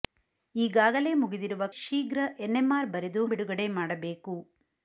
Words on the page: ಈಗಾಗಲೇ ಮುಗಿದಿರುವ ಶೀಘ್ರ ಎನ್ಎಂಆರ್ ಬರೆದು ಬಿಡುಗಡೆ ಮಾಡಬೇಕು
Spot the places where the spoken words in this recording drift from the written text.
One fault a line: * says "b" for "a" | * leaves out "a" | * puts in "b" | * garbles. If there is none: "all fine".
all fine